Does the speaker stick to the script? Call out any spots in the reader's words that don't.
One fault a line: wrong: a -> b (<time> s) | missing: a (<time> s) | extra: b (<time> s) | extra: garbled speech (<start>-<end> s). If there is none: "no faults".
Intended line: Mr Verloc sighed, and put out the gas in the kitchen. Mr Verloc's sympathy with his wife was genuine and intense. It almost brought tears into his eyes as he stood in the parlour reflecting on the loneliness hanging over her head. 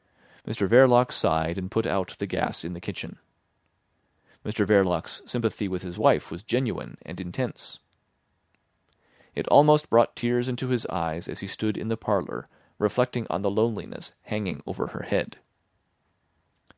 no faults